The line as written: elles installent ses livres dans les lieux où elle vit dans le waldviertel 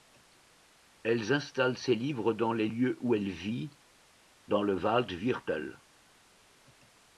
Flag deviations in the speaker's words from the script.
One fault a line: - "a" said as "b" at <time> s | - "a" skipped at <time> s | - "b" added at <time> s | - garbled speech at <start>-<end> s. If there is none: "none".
none